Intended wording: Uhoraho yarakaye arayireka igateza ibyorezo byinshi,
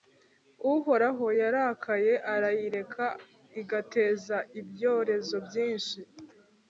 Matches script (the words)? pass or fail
pass